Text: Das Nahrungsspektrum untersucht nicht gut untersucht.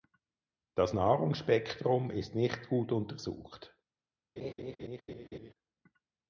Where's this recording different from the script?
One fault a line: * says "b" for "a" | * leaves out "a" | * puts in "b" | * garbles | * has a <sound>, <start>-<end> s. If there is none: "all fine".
* says "ist" for "untersucht"
* has a laugh, 4.4-5.5 s